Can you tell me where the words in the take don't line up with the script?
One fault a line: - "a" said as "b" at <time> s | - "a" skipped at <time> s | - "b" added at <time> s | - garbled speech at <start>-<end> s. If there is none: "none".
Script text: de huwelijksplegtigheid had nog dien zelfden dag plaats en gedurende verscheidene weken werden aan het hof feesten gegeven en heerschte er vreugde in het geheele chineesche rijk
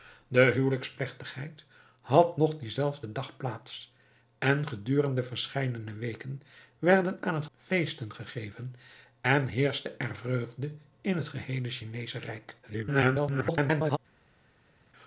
- "hof" skipped at 7.5 s
- garbled speech at 12.6-14.0 s